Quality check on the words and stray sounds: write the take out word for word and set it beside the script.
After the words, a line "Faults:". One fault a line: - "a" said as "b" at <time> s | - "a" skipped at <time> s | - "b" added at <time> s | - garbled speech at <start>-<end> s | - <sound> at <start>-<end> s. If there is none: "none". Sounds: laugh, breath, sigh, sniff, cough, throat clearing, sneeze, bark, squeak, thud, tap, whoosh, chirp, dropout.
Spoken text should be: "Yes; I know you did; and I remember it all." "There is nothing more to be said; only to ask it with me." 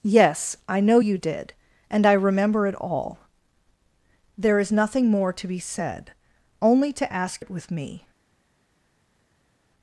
"Yes; I know you did; and I remember it all." "There is nothing more to be said; only to ask it with me."
Faults:
none